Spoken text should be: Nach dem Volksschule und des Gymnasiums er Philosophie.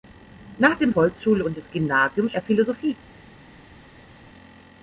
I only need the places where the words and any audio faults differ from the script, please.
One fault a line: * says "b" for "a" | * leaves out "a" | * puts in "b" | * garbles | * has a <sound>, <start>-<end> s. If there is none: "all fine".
all fine